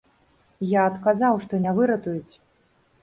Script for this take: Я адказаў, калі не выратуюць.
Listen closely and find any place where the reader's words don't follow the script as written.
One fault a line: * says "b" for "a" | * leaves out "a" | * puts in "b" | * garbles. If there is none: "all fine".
* says "што" for "калі"